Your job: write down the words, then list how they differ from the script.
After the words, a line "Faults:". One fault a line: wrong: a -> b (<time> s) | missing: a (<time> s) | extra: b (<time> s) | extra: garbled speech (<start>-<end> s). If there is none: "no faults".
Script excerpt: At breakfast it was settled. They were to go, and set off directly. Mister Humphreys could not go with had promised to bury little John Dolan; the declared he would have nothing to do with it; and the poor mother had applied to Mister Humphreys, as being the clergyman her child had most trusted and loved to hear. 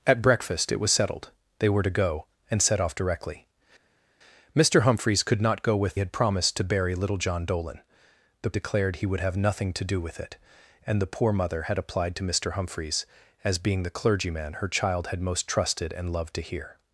At breakfast it was settled. They were to go, and set off directly. Mister Humphreys could not go with had promised to bury little John Dolan; the declared he would have nothing to do with it; and the poor mother had applied to Mister Humphreys, as being the clergyman her child had most trusted and loved to hear.
Faults:
no faults